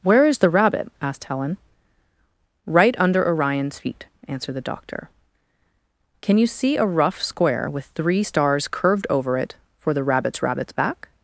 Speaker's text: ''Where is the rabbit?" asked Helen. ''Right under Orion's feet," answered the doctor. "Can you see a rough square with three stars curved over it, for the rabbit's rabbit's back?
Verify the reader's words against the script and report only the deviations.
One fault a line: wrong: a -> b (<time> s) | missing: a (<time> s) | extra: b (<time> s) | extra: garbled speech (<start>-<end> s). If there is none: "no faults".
no faults